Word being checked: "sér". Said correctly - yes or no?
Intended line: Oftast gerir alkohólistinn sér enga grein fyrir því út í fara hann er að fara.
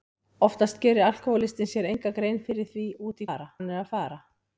yes